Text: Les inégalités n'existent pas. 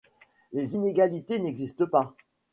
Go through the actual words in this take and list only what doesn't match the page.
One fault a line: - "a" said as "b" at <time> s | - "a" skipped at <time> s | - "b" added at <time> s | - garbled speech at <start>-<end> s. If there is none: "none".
none